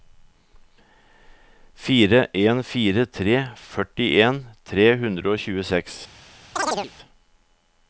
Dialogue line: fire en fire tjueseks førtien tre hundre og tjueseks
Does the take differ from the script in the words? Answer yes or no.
yes